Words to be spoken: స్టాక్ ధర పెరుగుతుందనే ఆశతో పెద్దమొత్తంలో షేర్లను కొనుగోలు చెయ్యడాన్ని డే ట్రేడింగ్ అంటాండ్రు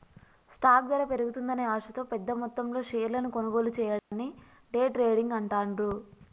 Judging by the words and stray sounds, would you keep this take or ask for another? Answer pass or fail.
fail